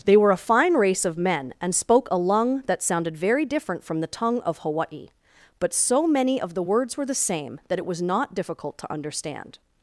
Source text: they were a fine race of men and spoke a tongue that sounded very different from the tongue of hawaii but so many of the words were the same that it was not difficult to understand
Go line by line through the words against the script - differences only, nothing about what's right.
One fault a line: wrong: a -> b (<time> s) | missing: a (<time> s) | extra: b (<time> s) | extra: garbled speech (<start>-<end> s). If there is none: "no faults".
wrong: tongue -> lung (2.2 s)